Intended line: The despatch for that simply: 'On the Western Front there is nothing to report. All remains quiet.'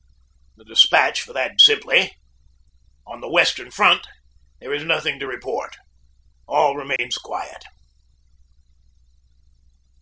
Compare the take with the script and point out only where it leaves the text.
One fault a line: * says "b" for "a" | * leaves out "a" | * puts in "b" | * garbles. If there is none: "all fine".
all fine